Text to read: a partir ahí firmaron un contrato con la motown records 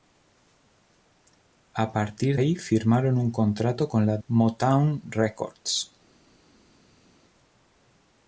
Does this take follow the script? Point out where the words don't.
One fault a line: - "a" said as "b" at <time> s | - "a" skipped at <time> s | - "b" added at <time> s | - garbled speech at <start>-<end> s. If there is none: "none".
none